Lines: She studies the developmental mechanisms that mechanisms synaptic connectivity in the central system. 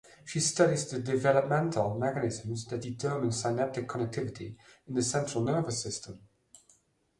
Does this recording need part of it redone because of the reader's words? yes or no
yes